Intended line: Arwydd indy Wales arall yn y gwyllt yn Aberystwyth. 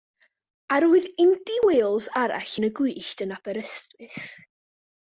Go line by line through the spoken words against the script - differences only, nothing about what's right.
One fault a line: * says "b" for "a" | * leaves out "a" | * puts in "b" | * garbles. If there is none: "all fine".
all fine